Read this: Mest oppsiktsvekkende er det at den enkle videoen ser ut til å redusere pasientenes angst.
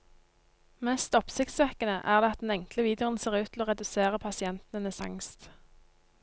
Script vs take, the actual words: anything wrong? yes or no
no